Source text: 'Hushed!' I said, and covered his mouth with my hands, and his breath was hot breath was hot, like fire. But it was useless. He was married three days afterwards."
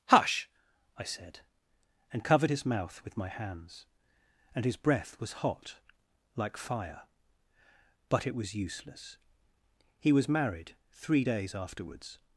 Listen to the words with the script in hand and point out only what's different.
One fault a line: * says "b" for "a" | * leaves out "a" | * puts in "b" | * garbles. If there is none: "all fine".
* says "Hush" for "Hushed"
* leaves out "breath was hot"